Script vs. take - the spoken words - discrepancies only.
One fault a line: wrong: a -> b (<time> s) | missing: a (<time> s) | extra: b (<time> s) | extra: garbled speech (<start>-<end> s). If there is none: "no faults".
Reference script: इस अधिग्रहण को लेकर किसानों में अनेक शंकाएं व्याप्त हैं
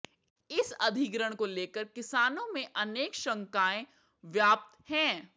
no faults